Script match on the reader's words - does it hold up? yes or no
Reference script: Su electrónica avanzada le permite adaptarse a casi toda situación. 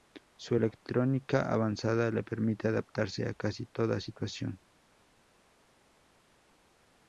yes